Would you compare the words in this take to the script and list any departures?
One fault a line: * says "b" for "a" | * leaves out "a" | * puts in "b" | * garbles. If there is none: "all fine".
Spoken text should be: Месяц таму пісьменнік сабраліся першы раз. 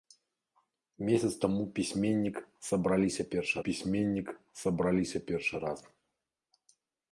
* puts in "пісьменнік сабраліся першы"